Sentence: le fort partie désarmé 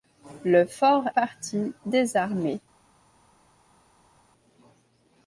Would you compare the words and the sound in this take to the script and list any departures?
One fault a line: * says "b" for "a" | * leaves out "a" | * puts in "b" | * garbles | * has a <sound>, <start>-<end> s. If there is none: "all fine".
all fine